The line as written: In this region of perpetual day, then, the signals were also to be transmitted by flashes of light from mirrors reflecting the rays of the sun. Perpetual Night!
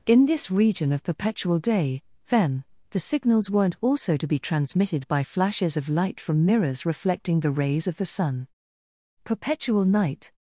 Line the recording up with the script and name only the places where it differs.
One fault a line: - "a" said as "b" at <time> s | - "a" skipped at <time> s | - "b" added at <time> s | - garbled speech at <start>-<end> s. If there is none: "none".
- "were" said as "weren't" at 3.5 s